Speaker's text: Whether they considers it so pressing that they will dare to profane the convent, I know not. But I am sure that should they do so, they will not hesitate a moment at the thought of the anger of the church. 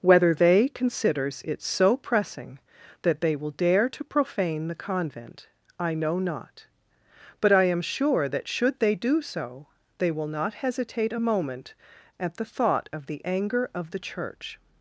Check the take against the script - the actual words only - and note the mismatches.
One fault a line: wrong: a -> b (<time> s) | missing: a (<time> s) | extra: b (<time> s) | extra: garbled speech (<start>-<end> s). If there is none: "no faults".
no faults